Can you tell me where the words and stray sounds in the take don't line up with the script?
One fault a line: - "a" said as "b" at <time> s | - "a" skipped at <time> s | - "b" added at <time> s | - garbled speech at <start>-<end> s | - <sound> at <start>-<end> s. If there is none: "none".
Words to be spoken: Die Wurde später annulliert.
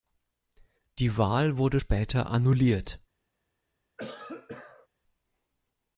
- "Wahl" added at 1.1 s
- cough at 4.0-4.9 s